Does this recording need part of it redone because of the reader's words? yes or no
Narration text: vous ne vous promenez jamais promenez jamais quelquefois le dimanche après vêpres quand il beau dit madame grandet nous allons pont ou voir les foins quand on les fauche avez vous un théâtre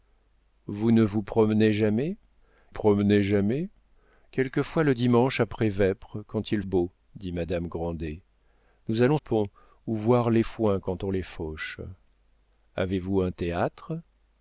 no